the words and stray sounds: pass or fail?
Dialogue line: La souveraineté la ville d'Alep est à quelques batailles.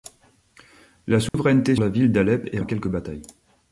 fail